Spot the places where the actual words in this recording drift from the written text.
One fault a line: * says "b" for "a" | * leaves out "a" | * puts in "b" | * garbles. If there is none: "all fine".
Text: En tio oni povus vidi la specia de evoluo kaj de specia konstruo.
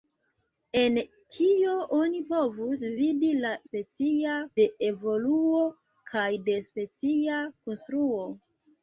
all fine